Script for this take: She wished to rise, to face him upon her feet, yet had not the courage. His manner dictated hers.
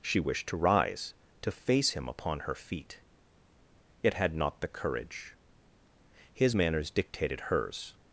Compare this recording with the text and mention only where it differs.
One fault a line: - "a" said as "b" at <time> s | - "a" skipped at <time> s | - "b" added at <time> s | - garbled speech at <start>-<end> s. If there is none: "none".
- "manner" said as "manners" at 6.5 s